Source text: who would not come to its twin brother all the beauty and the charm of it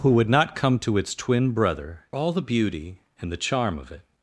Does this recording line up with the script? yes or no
yes